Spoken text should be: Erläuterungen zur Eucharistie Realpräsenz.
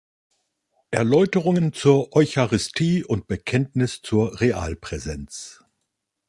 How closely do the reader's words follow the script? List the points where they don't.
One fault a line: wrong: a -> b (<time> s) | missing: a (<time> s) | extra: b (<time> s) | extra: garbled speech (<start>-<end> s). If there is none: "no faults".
extra: und Bekenntnis zur (3.0 s)